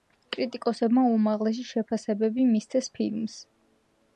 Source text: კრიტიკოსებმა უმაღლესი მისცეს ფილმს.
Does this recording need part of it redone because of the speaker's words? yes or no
yes